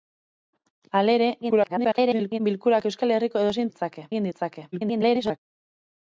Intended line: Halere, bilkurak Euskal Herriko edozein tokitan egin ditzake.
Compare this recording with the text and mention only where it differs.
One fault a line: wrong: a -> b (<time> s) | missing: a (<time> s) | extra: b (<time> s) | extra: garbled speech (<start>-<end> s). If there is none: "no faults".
extra: garbled speech (1.4-2.4 s)
wrong: tokitan -> ditzake (3.7 s)
extra: garbled speech (4.7-5.4 s)